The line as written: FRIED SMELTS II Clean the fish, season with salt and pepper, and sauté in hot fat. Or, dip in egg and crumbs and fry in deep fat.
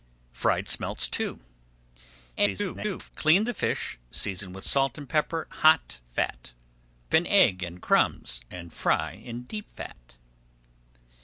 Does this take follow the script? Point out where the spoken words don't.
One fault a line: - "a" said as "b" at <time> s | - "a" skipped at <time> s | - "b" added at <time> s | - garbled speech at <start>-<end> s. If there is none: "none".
- garbled speech at 2.4-3.1 s
- "and sauté in" skipped at 5.5 s
- "Or dip" skipped at 6.5 s